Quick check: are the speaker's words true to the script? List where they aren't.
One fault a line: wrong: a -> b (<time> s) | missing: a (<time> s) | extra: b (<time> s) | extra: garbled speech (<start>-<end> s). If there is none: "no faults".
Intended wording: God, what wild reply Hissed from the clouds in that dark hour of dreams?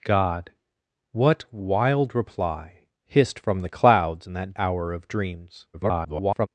missing: dark (4.5 s)
extra: garbled speech (5.7-6.5 s)